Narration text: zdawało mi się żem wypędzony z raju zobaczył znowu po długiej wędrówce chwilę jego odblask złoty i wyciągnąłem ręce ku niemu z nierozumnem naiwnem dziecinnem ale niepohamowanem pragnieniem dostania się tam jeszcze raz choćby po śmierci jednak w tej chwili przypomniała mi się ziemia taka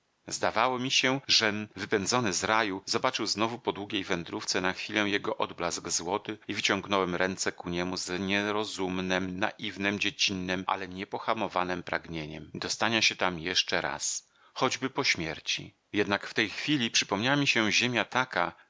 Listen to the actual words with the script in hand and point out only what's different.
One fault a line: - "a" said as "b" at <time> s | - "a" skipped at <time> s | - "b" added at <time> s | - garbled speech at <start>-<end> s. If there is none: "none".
- "na" added at 4.6 s